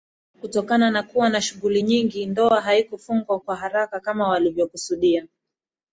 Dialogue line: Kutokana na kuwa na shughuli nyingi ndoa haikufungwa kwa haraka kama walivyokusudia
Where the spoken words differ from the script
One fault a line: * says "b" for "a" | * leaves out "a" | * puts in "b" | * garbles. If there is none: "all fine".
all fine